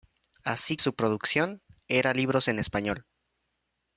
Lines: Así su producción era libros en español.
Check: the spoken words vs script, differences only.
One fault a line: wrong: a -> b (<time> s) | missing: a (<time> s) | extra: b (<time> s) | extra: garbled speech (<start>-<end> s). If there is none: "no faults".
no faults